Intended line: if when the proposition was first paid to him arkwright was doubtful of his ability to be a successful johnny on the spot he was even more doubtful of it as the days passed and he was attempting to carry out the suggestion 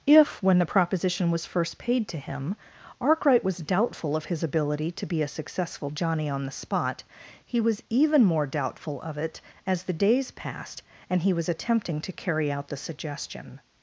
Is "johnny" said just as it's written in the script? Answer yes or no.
yes